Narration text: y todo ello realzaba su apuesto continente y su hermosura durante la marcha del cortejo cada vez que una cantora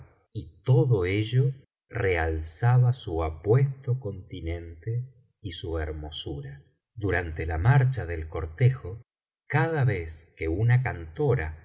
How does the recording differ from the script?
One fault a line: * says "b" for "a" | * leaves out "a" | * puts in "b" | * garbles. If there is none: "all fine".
all fine